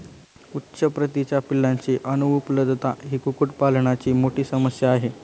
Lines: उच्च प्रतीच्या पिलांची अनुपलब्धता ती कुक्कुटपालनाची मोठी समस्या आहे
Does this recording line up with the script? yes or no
no